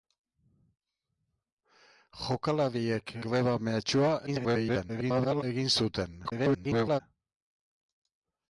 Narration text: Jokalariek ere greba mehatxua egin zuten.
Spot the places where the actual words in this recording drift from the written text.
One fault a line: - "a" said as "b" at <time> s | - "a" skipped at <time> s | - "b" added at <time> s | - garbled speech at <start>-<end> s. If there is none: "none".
- "ere" skipped at 3.1 s
- garbled speech at 4.3-5.4 s
- garbled speech at 6.2-7.0 s